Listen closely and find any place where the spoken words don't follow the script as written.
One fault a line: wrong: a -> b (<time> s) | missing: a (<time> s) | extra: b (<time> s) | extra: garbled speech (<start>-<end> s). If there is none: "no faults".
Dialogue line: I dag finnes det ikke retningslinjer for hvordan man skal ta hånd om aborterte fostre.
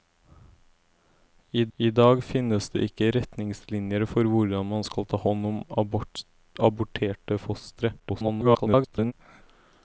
extra: I (1.8 s)
extra: garbled speech (8.0-9.1 s)